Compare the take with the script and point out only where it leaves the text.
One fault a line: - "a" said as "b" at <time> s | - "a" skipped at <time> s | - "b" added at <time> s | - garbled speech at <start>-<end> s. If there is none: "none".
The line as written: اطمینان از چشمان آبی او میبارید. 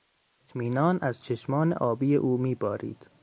none